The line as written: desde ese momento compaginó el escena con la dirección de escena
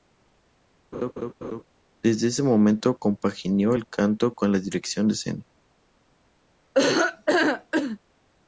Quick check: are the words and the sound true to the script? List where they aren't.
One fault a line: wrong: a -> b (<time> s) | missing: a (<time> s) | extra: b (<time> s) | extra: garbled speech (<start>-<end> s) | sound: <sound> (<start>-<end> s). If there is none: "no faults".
sound: laugh (0.9-1.6 s)
wrong: escena -> canto (3.9 s)
sound: laugh (6.7-8.0 s)